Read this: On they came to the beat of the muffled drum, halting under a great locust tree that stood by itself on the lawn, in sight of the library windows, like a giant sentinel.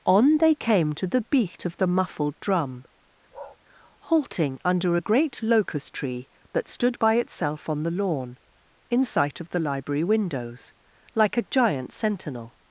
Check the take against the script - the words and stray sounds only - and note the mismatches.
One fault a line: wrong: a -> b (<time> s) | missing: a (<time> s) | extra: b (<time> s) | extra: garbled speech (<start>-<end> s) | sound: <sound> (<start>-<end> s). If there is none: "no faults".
sound: bark (3.3-3.6 s)